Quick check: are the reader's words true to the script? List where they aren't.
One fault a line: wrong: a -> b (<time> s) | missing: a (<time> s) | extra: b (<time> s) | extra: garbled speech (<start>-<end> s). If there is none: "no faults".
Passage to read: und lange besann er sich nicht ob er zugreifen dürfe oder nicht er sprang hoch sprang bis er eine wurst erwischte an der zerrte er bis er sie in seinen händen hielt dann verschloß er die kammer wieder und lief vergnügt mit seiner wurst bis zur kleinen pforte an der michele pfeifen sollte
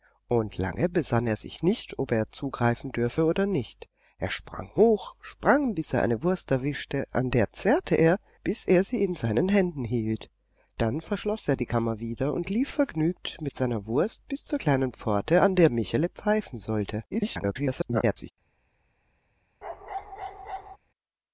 extra: garbled speech (17.1-18.3 s)